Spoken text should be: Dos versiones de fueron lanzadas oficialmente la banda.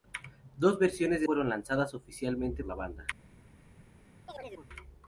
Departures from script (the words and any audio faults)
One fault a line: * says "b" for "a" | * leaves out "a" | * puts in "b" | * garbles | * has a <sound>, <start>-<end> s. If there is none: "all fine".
* has a chirp, 4.3-4.7 s